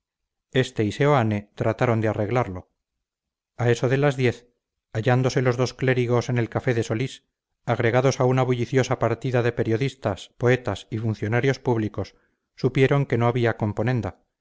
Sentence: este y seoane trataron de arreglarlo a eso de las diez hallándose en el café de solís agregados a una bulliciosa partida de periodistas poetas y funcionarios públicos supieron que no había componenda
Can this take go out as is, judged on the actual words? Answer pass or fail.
fail